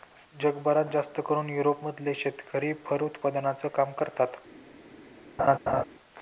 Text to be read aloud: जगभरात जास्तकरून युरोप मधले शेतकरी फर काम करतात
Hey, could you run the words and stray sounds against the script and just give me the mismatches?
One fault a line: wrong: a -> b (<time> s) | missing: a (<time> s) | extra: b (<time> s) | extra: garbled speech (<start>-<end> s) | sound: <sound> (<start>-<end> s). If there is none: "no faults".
extra: उत्पादनाचं (3.0 s)
sound: laugh (5.4-5.8 s)